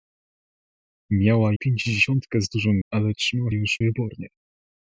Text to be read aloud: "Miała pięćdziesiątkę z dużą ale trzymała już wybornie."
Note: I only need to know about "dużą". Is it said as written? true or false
true